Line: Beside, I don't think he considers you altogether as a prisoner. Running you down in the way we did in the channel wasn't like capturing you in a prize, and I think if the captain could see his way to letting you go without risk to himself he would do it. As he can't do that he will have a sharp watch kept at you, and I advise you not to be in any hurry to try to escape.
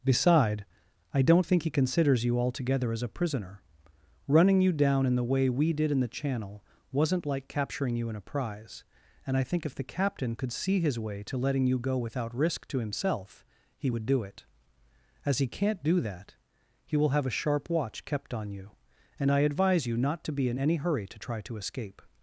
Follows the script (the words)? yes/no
no